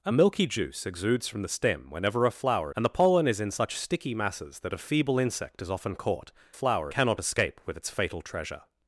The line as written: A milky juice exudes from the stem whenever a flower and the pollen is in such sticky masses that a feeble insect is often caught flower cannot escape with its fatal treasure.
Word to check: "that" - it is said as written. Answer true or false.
true